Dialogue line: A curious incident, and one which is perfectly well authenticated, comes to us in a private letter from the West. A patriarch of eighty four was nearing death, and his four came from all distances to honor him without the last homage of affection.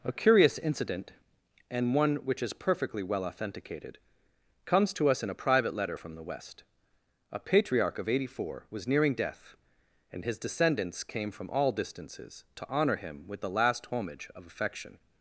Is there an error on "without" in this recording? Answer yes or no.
yes